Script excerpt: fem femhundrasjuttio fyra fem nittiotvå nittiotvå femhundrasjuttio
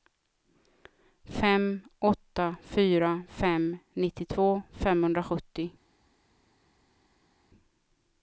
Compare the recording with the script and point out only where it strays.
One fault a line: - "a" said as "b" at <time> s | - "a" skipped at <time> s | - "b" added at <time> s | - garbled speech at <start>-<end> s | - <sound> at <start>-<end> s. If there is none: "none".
- "femhundrasjuttio" said as "åtta" at 2.0 s
- "nittiotvå" skipped at 4.6 s